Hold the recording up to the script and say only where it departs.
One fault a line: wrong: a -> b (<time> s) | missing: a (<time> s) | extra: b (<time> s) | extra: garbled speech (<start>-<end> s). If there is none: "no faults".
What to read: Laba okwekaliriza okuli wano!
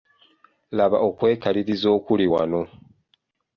no faults